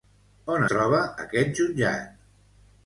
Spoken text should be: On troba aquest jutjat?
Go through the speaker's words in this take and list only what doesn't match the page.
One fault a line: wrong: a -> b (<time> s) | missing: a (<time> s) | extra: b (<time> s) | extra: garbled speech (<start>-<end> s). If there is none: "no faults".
no faults